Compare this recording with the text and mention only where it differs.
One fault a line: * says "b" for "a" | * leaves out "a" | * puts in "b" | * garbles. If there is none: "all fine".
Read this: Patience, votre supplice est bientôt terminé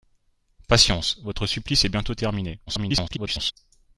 * garbles